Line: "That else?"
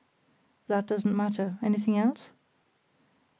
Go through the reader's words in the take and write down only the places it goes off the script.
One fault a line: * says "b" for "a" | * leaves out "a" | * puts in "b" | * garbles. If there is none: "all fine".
* puts in "doesn't matter Anything"